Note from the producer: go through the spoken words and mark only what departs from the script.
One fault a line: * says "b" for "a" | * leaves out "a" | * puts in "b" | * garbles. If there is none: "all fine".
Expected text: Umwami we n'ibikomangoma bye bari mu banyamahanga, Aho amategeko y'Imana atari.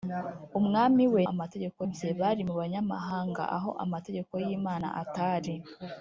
* says "amategeko" for "n'ibikomangoma"